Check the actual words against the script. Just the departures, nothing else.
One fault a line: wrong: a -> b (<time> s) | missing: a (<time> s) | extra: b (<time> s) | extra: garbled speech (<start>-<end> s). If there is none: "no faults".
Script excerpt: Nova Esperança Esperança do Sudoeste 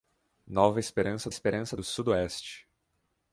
no faults